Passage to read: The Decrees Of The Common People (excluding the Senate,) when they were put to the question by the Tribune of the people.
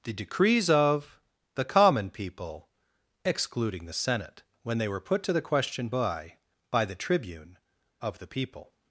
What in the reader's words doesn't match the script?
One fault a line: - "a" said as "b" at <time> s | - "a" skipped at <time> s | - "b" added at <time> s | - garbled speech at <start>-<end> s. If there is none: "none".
- "by" added at 6.7 s